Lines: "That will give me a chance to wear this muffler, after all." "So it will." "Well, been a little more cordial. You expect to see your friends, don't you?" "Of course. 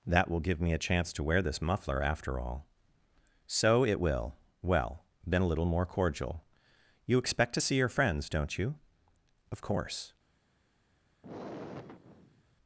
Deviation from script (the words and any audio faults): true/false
true